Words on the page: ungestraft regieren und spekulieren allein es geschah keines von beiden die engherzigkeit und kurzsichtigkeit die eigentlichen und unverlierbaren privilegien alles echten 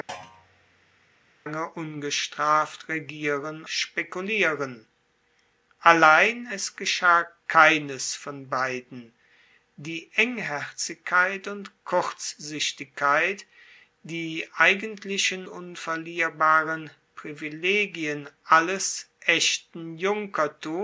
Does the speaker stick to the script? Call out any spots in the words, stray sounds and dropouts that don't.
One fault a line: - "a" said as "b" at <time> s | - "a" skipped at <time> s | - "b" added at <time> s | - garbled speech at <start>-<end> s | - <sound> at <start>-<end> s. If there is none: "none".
- thud at 0.1-1.2 s
- "und" skipped at 3.6 s
- "und" skipped at 15.5 s